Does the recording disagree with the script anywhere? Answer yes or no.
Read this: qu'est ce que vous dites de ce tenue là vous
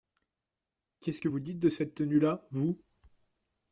yes